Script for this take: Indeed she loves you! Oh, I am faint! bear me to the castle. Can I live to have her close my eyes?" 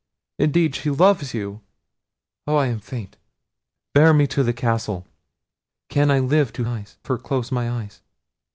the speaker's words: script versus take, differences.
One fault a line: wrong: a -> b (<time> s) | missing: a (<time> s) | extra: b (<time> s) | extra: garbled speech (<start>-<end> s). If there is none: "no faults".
wrong: have -> eyes (6.7 s)